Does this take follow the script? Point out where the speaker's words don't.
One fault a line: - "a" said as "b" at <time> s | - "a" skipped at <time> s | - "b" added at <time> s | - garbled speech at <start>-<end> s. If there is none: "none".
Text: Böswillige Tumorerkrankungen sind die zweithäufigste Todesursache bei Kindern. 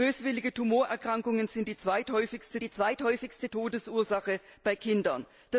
- "die zweithäufigste" added at 2.6 s